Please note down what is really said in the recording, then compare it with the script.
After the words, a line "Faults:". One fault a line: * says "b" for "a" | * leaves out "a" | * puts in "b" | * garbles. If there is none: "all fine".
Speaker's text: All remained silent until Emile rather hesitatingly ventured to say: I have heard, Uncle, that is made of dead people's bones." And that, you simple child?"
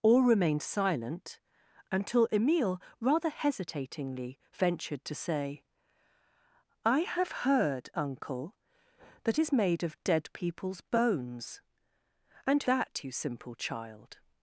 All remained silent until Emile rather hesitatingly ventured to say: I have heard, Uncle, that is made of dead people's bones." And that, you simple child?"
Faults:
all fine